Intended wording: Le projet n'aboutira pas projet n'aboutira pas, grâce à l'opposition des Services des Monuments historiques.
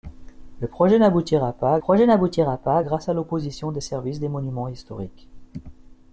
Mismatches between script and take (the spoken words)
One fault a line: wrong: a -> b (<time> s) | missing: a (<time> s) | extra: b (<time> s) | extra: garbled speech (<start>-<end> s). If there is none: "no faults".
no faults